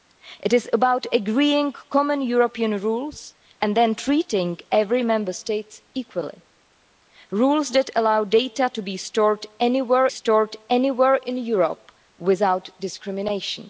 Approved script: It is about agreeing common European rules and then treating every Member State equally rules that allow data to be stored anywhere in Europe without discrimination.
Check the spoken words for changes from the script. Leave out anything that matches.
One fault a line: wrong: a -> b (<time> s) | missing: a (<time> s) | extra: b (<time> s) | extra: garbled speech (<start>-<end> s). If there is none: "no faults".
extra: stored anywhere (10.1 s)